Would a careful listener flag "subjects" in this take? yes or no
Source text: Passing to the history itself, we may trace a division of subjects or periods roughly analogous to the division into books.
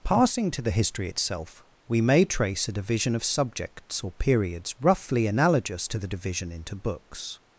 no